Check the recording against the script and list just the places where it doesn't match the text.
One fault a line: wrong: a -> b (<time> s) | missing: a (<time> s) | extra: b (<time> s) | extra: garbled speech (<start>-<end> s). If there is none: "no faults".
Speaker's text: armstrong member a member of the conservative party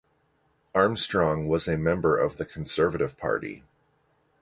wrong: member -> was (1.5 s)